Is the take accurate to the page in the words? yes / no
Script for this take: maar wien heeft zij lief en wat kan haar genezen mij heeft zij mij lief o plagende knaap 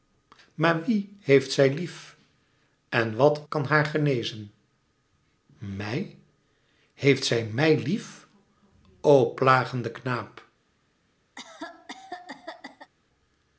yes